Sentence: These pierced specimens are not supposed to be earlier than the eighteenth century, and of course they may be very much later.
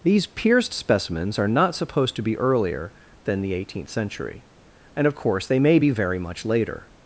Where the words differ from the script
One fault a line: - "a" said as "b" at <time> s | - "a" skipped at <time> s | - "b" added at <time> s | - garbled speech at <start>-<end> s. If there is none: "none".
none